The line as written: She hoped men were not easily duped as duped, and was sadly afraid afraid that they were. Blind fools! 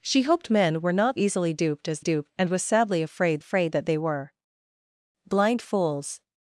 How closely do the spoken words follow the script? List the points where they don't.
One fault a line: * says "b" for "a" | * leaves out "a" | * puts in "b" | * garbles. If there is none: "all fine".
all fine